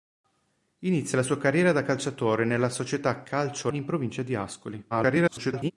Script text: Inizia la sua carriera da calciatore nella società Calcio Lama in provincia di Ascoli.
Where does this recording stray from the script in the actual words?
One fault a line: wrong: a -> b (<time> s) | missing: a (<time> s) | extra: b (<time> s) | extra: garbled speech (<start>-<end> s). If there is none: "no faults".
missing: Lama (3.7 s)
extra: garbled speech (4.9-5.7 s)